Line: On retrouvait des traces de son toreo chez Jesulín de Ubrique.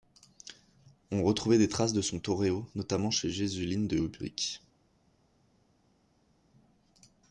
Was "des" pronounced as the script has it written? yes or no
yes